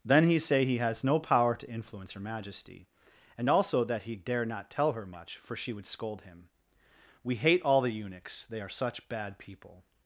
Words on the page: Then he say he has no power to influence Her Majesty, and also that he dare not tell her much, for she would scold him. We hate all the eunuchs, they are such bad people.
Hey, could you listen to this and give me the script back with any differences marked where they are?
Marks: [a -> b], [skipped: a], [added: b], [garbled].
Then he say he has no power to influence Her Majesty, and also that he dare not tell her much, for she would scold him. We hate all the eunuchs, they are such bad people.